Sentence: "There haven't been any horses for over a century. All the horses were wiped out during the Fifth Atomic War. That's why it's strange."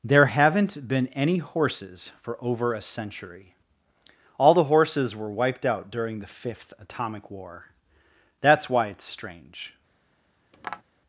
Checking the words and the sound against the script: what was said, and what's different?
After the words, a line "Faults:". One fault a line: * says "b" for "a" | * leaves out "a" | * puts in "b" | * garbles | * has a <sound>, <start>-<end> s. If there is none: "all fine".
"There haven't been any horses for over a century. All the horses were wiped out during the Fifth Atomic War. That's why it's strange."
Faults:
* has a tap, 10.5-10.8 s